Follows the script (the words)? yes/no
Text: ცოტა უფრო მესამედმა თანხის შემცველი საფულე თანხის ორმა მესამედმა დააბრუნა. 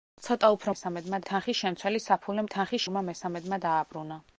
yes